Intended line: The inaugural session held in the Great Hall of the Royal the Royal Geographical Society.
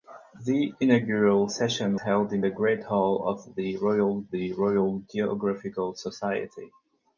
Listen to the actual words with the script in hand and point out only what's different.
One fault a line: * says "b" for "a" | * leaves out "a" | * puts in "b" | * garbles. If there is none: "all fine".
all fine